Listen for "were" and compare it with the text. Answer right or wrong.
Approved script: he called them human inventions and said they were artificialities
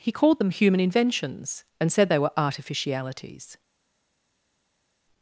right